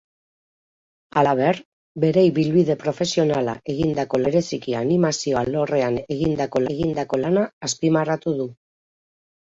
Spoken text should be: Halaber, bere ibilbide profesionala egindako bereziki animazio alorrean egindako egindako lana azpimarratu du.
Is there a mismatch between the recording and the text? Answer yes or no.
no